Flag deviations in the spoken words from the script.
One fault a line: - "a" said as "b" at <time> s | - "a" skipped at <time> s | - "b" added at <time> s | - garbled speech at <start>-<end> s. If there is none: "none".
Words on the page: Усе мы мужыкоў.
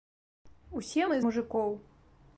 none